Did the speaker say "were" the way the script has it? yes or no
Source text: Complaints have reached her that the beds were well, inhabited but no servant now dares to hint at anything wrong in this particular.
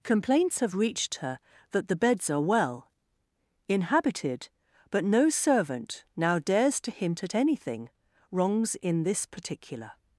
no